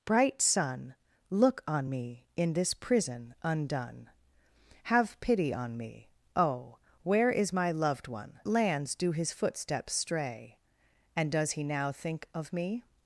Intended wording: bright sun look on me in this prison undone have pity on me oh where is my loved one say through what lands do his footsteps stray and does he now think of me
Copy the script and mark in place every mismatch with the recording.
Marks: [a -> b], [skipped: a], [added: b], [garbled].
bright sun look on me in this prison undone have pity on me oh where is my loved one [skipped: say through what] lands do his footsteps stray and does he now think of me